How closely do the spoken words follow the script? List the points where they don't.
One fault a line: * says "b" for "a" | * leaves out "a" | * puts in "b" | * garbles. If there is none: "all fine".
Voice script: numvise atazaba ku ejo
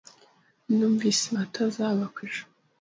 all fine